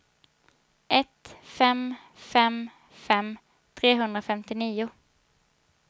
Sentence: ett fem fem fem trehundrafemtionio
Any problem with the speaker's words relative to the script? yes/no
no